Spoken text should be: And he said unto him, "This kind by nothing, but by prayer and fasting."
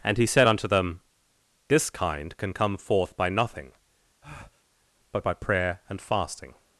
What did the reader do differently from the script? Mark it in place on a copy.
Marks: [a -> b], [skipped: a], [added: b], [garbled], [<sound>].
And he said unto [him, -> them] "This kind [added: can come forth] by nothing, [breath] but by prayer and fasting."